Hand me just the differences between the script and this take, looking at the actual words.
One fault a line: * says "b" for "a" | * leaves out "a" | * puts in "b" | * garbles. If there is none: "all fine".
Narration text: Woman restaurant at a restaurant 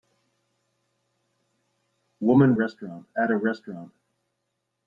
all fine